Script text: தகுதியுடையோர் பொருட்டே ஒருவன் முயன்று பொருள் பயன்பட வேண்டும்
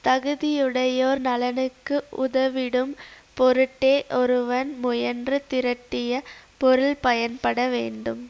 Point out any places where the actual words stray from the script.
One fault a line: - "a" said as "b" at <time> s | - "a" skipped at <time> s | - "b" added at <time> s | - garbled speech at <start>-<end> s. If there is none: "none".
- "நலனுக்கு உதவிடும்" added at 1.2 s
- "திரட்டிய" added at 5.5 s